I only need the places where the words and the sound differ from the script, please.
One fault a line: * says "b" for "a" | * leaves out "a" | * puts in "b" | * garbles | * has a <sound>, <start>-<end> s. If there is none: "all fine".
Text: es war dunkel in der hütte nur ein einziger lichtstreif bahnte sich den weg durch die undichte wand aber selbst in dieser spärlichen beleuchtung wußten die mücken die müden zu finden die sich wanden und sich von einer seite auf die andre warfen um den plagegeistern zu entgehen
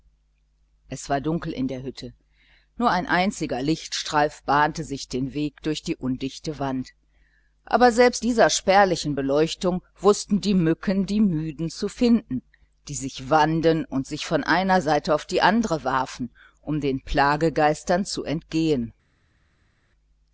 * leaves out "in"